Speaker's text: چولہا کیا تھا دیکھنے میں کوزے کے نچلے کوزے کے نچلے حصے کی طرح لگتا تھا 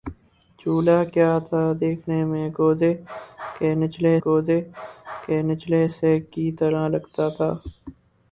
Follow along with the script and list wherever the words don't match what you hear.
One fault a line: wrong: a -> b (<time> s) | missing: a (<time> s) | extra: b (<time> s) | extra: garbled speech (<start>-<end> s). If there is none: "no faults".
no faults